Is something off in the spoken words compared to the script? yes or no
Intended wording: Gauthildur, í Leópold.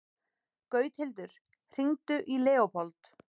yes